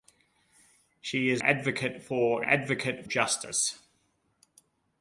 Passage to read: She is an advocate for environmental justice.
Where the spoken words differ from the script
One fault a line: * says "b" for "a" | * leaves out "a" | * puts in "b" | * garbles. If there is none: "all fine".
* leaves out "an"
* says "advocate" for "environmental"